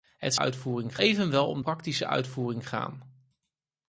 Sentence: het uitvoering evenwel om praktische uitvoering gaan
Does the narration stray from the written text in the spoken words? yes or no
no